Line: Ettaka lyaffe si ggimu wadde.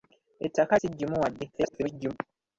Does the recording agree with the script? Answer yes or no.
no